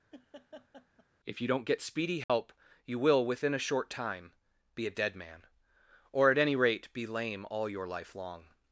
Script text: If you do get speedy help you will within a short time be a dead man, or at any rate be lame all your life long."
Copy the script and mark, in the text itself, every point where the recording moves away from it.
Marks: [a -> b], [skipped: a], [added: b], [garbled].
If you [do -> don't] get speedy help you will within a short time be a dead man, or at any rate be lame all your life long."